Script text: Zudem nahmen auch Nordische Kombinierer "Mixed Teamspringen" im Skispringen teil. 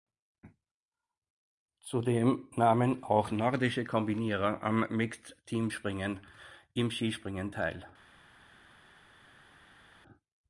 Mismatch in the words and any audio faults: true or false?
true